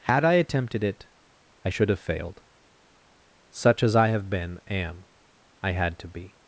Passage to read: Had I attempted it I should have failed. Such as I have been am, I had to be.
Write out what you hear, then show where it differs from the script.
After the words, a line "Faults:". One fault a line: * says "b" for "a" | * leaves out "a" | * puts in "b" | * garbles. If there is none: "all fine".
Had I attempted it I should have failed. Such as I have been am, I had to be.
Faults:
all fine